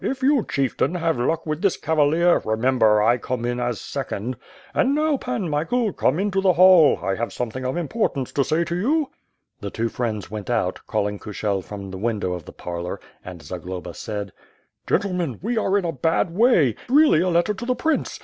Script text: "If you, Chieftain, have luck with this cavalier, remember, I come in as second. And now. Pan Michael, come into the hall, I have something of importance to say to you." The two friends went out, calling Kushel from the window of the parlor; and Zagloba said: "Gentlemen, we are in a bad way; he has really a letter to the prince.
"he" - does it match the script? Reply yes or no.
no